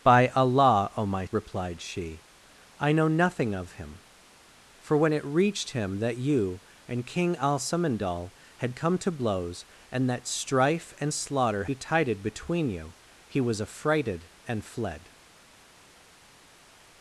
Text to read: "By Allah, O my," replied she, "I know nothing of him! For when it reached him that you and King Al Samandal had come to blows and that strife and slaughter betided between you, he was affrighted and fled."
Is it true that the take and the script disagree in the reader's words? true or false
false